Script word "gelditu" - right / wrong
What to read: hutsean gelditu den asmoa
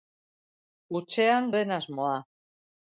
wrong